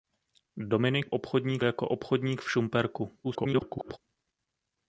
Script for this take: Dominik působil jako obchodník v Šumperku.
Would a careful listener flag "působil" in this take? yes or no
yes